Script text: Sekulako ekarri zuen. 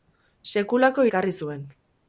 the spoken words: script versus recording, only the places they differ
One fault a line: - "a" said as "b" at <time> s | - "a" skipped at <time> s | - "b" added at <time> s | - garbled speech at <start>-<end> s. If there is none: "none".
none